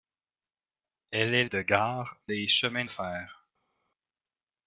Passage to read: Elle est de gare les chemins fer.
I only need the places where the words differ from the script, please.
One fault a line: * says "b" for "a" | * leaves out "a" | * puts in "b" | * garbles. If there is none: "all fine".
all fine